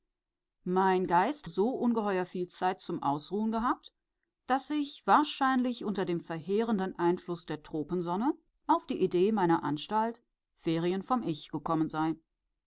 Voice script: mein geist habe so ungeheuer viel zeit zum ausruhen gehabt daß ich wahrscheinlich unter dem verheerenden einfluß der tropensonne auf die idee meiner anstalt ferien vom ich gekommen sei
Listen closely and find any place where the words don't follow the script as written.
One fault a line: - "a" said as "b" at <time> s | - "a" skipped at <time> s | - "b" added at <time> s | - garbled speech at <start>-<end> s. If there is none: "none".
- "habe" skipped at 1.5 s